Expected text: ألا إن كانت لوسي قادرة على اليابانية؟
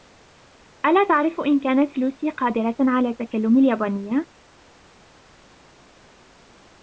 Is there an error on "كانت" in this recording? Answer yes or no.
no